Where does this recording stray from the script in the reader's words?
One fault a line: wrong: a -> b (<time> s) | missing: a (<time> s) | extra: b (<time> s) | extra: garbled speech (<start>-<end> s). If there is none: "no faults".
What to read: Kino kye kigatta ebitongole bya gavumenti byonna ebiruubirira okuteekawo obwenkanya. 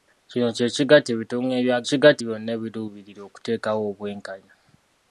wrong: gavumenti -> kigatta (1.9 s)